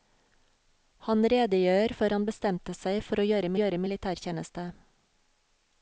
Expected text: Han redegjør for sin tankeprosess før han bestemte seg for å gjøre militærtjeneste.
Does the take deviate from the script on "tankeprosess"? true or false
true